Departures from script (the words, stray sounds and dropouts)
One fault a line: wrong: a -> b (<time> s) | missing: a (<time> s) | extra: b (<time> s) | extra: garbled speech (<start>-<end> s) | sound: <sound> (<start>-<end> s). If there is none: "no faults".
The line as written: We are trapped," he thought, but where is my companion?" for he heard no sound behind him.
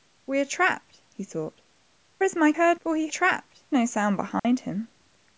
missing: but where (1.6 s)
wrong: companion -> heard (2.5 s)
wrong: heard -> trapped (3.1 s)
sound: dropout (4.4-4.4 s)